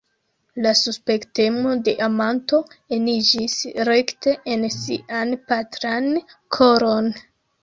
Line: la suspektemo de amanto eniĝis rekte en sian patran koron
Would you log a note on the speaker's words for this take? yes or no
no